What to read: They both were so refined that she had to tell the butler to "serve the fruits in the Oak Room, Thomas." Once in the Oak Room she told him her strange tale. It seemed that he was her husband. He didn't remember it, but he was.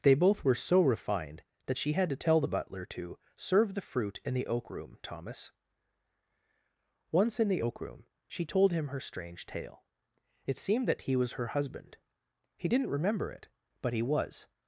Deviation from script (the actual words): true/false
true